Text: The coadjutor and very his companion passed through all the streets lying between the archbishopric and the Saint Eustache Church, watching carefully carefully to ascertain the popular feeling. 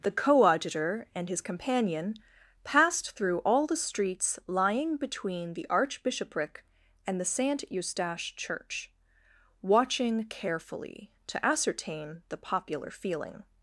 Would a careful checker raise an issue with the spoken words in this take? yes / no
yes